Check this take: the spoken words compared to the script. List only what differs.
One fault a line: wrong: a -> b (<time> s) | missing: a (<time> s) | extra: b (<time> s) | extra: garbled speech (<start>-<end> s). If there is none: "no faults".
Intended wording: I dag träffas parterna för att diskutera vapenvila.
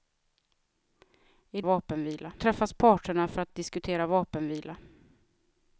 wrong: dag -> vapenvila (1.6 s)
extra: att (3.5 s)